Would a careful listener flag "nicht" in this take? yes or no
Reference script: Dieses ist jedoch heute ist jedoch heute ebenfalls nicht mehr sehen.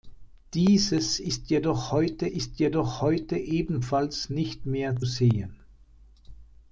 no